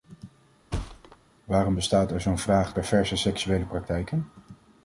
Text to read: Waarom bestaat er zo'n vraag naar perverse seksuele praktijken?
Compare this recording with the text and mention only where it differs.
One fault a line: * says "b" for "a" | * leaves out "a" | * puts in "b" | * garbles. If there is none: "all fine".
* leaves out "naar"